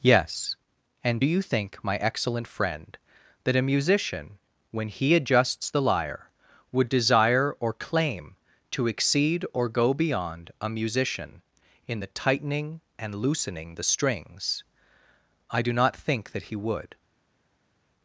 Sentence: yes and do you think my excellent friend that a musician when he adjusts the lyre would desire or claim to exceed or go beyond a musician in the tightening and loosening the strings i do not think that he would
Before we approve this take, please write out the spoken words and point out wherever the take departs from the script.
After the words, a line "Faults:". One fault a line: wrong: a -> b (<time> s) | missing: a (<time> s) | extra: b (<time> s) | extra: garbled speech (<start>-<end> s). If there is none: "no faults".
yes and do you think my excellent friend that a musician when he adjusts the lyre would desire or claim to exceed or go beyond a musician in the tightening and loosening the strings i do not think that he would
Faults:
no faults